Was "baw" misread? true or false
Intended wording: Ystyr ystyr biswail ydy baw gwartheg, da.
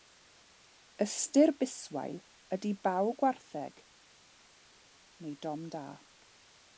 false